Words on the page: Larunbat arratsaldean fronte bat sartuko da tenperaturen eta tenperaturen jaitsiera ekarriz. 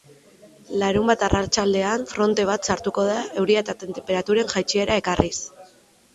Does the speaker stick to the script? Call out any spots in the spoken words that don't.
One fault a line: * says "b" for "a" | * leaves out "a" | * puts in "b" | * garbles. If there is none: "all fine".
* says "euria" for "tenperaturen"